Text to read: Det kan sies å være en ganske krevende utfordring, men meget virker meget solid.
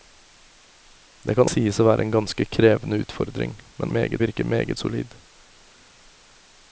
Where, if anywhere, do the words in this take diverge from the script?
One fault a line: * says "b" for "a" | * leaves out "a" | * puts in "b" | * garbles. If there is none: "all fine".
all fine